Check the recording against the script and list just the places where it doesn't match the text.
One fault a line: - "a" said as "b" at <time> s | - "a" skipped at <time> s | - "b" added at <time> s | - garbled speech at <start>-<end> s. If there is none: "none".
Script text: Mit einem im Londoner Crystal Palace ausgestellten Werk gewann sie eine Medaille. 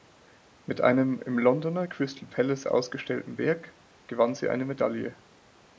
none